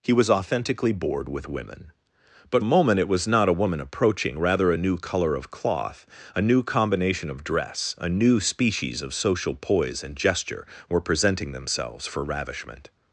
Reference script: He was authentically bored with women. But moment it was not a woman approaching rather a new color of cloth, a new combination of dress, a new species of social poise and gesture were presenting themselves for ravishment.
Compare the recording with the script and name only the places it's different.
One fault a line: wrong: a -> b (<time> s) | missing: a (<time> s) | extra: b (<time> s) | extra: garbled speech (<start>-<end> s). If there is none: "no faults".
no faults